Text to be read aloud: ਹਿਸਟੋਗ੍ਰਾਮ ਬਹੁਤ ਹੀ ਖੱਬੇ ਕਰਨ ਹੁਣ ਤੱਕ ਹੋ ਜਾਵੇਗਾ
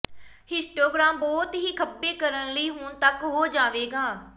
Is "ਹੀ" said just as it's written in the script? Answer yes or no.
yes